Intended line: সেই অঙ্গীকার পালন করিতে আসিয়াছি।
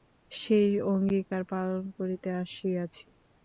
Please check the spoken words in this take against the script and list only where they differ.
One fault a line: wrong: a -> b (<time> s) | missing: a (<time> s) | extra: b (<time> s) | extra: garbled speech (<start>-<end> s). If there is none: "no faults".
no faults